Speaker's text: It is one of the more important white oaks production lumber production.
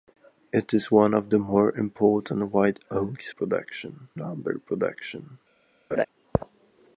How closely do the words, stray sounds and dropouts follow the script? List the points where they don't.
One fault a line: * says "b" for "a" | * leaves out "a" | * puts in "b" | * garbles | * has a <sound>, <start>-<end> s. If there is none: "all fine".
* has a laugh, 5.9-6.1 s